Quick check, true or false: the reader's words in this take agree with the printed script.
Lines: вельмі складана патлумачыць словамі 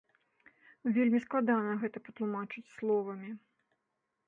false